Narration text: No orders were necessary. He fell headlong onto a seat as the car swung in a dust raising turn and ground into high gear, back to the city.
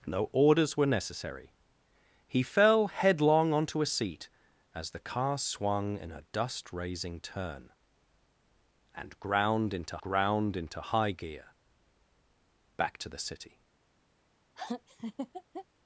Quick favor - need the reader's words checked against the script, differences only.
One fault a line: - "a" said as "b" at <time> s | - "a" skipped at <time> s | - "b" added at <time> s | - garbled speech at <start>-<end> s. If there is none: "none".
- "ground into" added at 10.0 s